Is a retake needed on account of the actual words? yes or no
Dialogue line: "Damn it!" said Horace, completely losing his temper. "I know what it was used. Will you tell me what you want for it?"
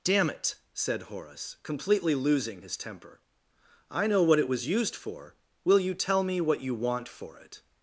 yes